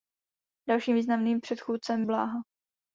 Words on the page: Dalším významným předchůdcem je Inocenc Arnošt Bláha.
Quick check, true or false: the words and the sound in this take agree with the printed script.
false